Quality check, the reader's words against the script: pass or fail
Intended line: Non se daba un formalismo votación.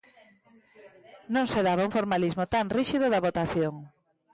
fail